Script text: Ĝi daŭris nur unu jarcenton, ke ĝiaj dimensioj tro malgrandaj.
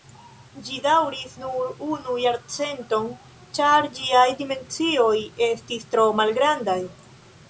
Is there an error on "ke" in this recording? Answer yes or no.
yes